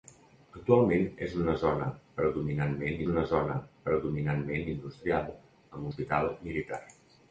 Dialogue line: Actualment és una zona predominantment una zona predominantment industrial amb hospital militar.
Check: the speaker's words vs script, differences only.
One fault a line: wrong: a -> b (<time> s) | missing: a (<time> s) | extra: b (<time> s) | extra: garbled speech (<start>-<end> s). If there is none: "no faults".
no faults